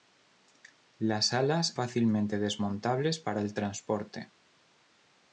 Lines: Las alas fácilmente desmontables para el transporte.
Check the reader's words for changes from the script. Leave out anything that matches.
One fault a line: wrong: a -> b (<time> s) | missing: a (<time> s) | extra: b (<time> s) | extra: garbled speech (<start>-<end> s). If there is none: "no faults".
no faults